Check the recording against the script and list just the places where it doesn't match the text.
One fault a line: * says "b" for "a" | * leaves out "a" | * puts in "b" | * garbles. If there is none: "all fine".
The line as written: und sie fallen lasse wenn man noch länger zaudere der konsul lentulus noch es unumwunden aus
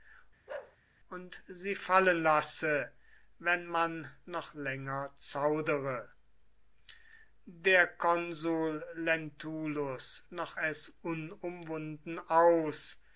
all fine